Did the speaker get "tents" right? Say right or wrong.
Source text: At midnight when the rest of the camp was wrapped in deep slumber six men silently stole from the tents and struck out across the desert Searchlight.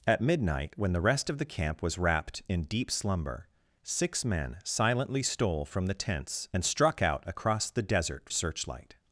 right